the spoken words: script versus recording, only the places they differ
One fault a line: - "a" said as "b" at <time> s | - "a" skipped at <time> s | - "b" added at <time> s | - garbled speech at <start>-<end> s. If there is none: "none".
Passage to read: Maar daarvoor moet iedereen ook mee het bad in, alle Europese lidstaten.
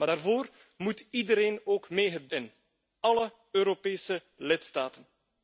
- "bad" skipped at 2.3 s